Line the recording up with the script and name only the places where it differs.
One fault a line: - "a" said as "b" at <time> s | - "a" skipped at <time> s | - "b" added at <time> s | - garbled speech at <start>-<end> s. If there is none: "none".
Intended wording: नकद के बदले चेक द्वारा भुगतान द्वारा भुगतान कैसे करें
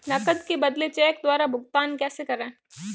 - "द्वारा भुगतान" skipped at 2.0 s